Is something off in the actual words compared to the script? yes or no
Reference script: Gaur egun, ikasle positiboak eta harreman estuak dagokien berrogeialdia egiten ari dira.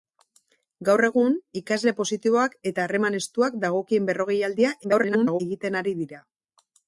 yes